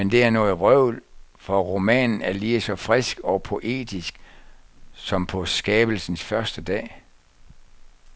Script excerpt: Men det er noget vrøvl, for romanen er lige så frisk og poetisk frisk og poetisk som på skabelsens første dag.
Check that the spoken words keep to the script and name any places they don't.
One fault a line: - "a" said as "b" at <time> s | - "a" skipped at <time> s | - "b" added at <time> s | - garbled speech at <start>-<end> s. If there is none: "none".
- "frisk og poetisk" skipped at 4.2 s